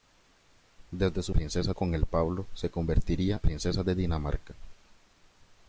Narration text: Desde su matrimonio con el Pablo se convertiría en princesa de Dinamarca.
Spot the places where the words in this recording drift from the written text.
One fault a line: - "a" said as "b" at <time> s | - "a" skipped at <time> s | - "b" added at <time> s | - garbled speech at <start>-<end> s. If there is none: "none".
- "matrimonio" said as "princesa" at 1.3 s
- "en" skipped at 3.4 s